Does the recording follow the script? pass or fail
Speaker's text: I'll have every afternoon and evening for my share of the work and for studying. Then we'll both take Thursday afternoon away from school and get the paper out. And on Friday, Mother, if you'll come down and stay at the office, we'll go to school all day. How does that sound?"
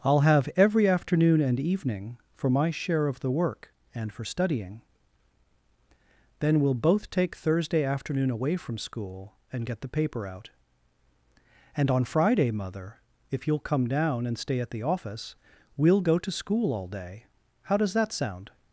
pass